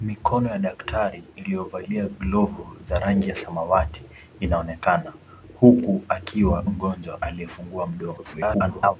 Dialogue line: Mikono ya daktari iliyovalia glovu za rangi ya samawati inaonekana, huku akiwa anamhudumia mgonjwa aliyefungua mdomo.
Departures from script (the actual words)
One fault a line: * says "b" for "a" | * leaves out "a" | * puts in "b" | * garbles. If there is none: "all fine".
* leaves out "anamhudumia"
* garbles